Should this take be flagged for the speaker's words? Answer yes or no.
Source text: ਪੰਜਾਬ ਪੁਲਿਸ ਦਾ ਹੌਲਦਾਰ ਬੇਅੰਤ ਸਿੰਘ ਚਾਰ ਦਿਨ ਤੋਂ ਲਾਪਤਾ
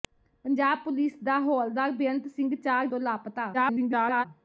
yes